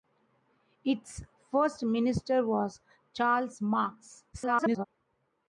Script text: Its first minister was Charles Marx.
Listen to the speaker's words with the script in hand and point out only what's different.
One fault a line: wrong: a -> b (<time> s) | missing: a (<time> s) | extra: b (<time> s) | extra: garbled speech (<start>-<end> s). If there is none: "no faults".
extra: garbled speech (4.3-4.8 s)